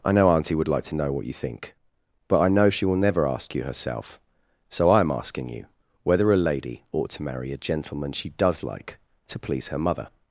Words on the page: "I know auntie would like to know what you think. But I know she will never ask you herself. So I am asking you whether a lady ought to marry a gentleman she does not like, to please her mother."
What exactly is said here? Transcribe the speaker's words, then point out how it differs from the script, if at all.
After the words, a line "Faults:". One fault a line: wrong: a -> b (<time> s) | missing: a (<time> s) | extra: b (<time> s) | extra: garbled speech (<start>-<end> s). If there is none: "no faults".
"I know auntie would like to know what you think. But I know she will never ask you herself. So I am asking you whether a lady ought to marry a gentleman she does like, to please her mother."
Faults:
missing: not (8.6 s)